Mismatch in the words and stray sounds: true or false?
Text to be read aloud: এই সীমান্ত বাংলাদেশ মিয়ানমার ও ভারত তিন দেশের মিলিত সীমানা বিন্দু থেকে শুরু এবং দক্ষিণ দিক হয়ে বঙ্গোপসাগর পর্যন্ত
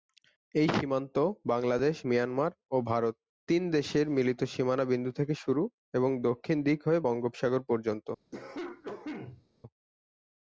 true